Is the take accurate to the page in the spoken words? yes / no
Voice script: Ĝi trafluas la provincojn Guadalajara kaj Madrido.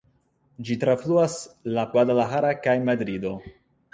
no